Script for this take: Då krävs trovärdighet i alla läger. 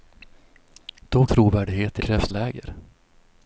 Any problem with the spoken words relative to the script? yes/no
yes